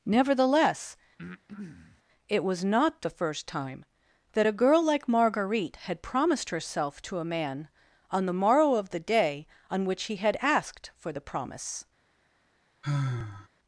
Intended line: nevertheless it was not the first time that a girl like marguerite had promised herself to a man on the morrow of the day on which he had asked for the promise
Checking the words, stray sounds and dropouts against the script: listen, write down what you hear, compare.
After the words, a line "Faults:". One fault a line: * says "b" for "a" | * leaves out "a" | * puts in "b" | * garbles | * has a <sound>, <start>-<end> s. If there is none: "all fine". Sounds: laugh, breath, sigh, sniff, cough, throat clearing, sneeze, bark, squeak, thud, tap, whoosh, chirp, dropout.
nevertheless it was not the first time that a girl like marguerite had promised herself to a man on the morrow of the day on which he had asked for the promise
Faults:
* has a breath, 1.2-2.0 s
* has a sigh, 12.8-13.5 s